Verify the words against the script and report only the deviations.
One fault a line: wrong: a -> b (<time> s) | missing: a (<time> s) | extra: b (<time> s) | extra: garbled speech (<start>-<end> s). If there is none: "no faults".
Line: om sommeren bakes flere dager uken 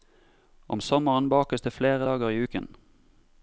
extra: det (1.6 s)
extra: i (2.3 s)